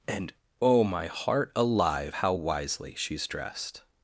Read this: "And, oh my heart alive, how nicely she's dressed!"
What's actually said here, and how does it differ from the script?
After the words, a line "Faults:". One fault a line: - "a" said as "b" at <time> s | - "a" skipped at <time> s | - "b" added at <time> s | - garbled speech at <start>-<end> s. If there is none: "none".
"And, oh my heart alive, how wisely she's dressed!"
Faults:
- "nicely" said as "wisely" at 2.3 s